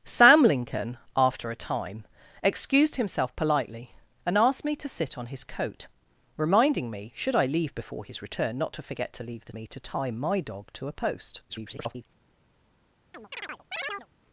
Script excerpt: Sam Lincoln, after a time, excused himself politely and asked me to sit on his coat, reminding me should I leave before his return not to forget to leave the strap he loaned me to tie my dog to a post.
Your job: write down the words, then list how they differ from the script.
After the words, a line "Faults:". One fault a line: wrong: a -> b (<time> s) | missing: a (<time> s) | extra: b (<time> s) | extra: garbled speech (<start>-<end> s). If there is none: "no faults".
Sam Lincoln, after a time, excused himself politely and asked me to sit on his coat, reminding me should I leave before his return not to forget to leave the me to tie my dog to a post. [garbled]
Faults:
missing: strap he loaned (9.5 s)
extra: garbled speech (11.5-12.1 s)